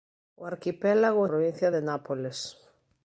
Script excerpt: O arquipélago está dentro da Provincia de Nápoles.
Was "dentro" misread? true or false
true